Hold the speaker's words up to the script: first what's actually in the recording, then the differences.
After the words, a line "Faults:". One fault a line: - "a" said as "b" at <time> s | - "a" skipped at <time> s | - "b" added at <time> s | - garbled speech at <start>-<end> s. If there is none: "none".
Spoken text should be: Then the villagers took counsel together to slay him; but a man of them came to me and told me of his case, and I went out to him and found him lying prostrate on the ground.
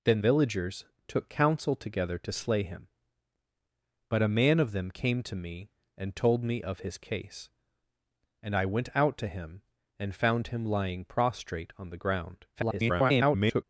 Then villagers took counsel together to slay him; but a man of them came to me and told me of his case, and I went out to him and found him lying prostrate on the ground. [garbled]
Faults:
- "the" skipped at 0.2 s
- garbled speech at 12.5-13.6 s